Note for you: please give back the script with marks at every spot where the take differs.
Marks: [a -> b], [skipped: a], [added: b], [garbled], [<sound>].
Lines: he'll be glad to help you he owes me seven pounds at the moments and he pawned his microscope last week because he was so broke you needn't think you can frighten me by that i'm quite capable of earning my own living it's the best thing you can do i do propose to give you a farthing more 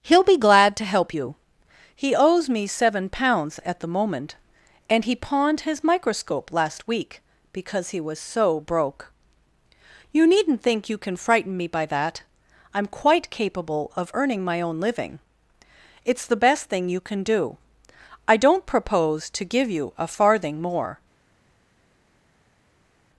he'll be glad to help you he owes me seven pounds at the [moments -> moment] and he pawned his microscope last week because he was so broke you needn't think you can frighten me by that i'm quite capable of earning my own living it's the best thing you can do i [do -> don't] propose to give you a farthing more